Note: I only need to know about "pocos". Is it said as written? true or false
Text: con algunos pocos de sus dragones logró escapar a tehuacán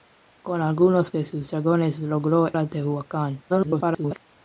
false